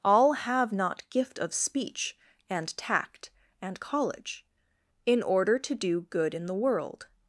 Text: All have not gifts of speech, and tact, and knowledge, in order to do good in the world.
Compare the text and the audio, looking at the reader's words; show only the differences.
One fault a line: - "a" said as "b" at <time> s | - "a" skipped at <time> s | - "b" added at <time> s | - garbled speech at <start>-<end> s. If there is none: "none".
- "gifts" said as "gift" at 1.1 s
- "knowledge" said as "college" at 3.8 s